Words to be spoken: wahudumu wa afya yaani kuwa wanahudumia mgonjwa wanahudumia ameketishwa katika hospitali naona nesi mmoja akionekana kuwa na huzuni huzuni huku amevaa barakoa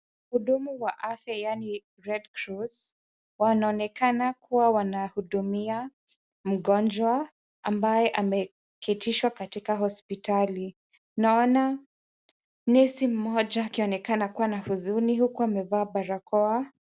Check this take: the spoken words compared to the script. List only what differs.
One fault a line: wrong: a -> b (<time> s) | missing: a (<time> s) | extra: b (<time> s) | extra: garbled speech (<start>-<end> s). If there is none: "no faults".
extra: red cross wanaonekana (2.0 s)
wrong: wanahudumia -> ambaye (7.6 s)
missing: huzuni (15.2 s)